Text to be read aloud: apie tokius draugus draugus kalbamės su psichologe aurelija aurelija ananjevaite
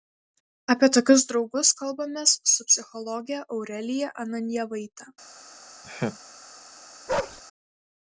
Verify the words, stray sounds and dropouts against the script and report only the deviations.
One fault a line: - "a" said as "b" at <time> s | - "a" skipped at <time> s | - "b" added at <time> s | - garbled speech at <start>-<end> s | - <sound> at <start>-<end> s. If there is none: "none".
- "draugus" skipped at 1.7 s
- "aurelija" skipped at 4.1 s
- laugh at 5.8-6.2 s
- bark at 7.1-7.4 s